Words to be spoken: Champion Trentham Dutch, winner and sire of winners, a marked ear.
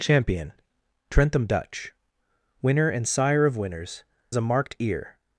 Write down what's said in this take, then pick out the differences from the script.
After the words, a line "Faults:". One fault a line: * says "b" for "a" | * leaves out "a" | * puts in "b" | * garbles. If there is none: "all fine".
Champion Trentham Dutch, winner and sire of winners, a marked ear.
Faults:
all fine